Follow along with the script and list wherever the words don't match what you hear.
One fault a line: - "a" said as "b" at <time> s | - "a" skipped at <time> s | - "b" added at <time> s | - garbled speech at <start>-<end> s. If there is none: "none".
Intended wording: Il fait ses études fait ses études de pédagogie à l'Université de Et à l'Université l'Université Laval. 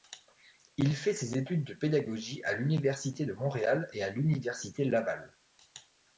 - "fait ses études" skipped at 1.7 s
- "Montréal" added at 3.3 s
- "l'Université" skipped at 4.8 s